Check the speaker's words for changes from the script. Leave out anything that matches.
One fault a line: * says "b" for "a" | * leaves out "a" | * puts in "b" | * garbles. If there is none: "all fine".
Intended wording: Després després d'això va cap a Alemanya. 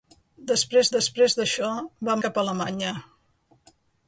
all fine